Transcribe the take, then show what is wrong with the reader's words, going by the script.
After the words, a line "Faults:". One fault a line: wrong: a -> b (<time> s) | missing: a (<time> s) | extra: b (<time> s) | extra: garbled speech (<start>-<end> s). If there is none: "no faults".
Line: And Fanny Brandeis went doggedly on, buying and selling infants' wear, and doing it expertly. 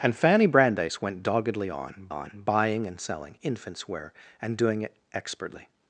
And Fanny Brandeis went doggedly on on, buying and selling infants' wear, and doing it expertly.
Faults:
extra: on (2.1 s)